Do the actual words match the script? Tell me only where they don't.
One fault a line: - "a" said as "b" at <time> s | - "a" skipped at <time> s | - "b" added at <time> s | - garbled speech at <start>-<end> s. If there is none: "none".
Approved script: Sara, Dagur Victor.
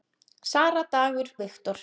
none